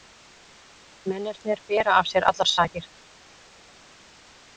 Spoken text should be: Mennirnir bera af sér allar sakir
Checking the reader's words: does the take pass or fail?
pass